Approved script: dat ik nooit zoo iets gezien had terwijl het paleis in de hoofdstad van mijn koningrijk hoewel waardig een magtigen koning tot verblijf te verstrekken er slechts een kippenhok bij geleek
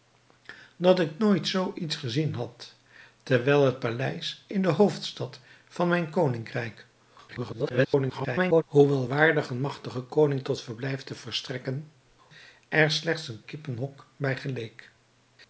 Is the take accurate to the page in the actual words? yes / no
no